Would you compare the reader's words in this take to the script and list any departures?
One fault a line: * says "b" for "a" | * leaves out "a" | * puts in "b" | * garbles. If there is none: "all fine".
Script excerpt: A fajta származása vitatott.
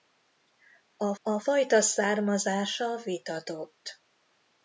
* puts in "a"